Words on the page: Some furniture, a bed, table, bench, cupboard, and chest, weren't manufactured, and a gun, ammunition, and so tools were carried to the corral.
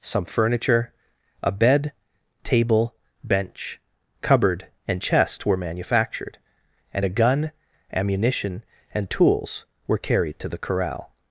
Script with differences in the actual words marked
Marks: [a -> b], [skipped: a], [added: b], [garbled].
Some furniture, a bed, table, bench, cupboard, and chest, [weren't -> were] manufactured, and a gun, ammunition, and [skipped: so] tools were carried to the corral.